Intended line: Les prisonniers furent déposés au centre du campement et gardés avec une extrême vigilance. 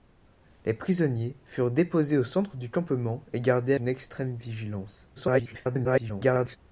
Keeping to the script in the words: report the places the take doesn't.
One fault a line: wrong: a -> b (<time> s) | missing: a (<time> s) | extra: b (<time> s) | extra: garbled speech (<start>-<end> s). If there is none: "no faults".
missing: avec (3.8 s)
extra: garbled speech (5.2-6.6 s)